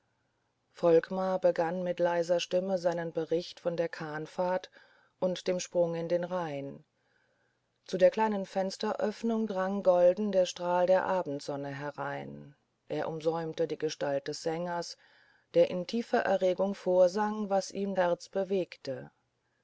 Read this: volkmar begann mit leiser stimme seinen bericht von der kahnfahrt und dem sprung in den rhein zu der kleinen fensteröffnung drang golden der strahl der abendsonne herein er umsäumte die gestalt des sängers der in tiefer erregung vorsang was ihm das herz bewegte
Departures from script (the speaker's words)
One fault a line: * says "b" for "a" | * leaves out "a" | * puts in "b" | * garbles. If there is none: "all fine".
* leaves out "das"